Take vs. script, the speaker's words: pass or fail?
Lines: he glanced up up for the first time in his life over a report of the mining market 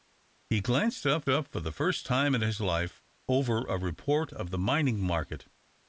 pass